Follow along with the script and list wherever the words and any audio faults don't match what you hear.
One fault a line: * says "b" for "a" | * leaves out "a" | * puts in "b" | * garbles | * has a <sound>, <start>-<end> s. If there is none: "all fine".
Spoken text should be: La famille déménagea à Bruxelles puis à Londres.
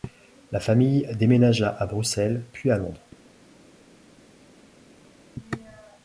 all fine